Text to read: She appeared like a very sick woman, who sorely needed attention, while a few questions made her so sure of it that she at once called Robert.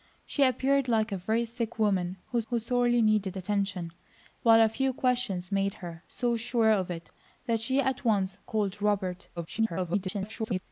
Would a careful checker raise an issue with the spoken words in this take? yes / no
yes